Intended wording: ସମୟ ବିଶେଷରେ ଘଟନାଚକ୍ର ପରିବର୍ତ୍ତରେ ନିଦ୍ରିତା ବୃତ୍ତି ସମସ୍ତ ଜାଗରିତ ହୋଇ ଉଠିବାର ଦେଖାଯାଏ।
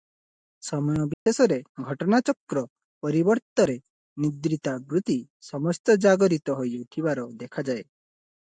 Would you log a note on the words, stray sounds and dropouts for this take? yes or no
yes